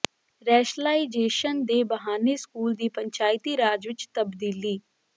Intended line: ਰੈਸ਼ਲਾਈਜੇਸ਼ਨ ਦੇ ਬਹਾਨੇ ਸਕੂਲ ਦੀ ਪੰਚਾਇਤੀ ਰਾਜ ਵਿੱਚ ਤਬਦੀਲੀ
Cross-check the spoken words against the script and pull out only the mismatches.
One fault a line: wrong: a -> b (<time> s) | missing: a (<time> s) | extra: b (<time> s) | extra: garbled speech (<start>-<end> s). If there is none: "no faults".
no faults